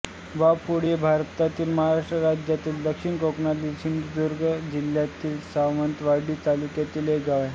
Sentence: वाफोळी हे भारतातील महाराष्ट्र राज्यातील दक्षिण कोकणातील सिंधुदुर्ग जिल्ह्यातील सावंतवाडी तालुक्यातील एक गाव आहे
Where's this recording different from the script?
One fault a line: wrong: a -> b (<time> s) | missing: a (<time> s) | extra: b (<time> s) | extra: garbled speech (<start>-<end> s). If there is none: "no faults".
no faults